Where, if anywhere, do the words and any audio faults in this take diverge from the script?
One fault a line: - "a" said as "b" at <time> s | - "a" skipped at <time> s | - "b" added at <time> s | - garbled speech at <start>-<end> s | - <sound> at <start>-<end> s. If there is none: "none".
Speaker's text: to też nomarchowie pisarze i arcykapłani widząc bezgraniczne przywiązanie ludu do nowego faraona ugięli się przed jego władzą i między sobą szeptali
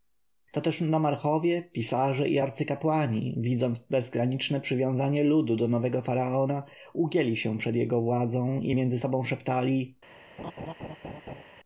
- laugh at 10.4-11.4 s